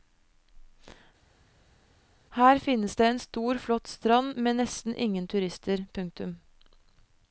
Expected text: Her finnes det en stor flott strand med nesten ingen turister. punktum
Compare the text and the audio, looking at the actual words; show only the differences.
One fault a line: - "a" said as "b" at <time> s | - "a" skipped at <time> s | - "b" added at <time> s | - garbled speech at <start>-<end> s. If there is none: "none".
none